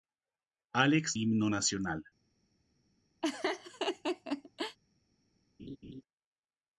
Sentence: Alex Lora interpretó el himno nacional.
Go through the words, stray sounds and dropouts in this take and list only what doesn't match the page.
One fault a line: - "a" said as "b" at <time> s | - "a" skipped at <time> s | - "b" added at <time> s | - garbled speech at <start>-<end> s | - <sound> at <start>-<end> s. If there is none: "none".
- "Lora interpretó el" skipped at 1.2 s
- laugh at 3.2-4.8 s
- laugh at 5.6-6.0 s